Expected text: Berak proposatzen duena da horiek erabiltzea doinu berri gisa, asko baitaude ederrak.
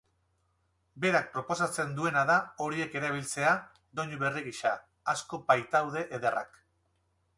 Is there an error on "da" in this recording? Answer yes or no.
no